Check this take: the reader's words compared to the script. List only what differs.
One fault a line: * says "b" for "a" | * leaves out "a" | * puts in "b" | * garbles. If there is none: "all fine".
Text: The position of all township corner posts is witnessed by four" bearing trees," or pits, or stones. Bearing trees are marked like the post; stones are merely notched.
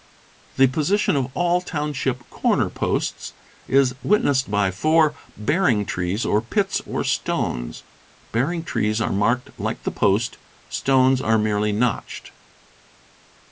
all fine